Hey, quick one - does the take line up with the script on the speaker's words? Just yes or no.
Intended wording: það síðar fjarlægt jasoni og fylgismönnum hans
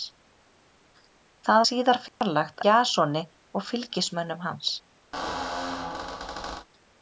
yes